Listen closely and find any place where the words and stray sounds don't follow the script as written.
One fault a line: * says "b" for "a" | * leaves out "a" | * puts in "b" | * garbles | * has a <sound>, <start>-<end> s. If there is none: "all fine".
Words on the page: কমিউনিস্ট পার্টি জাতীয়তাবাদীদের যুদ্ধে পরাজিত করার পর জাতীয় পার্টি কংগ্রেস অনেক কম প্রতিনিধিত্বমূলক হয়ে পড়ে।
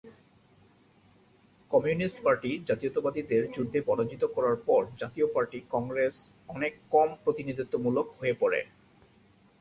all fine